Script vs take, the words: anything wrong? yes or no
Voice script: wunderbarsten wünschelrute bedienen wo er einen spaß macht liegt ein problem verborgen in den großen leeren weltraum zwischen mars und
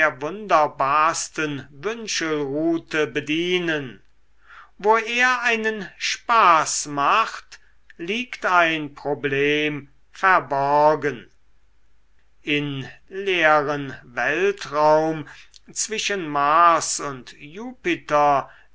yes